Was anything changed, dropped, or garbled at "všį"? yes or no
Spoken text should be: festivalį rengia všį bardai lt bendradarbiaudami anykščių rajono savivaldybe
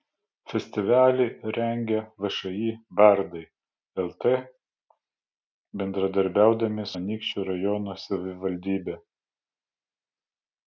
no